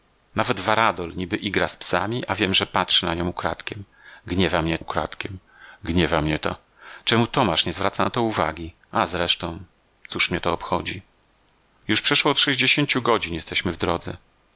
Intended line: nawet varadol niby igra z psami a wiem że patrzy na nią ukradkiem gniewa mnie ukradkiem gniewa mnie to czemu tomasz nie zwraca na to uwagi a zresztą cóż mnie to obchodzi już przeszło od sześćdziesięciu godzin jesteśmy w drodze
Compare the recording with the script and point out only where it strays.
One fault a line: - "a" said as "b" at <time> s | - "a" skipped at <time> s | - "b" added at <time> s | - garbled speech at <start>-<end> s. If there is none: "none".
none